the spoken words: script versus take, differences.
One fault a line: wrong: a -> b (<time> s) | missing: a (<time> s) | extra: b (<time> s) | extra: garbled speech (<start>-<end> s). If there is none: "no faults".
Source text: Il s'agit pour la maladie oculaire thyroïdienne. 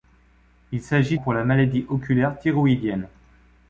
no faults